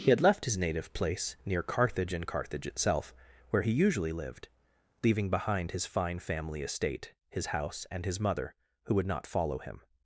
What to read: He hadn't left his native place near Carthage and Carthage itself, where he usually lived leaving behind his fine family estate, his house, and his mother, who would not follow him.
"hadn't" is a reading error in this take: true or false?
true